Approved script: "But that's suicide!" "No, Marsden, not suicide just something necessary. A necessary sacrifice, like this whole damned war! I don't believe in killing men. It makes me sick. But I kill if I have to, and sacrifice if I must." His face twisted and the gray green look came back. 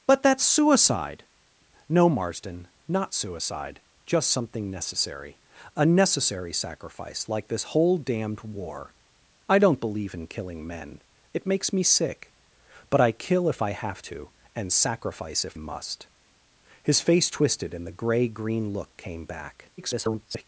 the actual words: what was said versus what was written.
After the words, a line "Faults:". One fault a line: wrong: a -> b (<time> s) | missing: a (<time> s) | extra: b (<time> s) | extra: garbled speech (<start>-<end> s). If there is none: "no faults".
"But that's suicide!" "No, Marsden, not suicide just something necessary. A necessary sacrifice, like this whole damned war! I don't believe in killing men. It makes me sick. But I kill if I have to, and sacrifice if must." His face twisted and the gray green look came back. [garbled]
Faults:
missing: I (15.6 s)
extra: garbled speech (19.8-20.4 s)